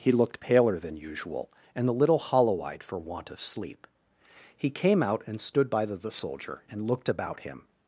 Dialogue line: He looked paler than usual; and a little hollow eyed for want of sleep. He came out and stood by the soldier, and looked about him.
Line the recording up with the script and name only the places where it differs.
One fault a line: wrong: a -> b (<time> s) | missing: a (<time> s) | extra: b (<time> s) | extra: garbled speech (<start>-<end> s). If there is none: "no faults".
extra: the (6.0 s)